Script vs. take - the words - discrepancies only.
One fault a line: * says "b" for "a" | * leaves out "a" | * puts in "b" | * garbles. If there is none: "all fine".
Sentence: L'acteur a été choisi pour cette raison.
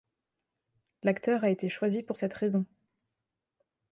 all fine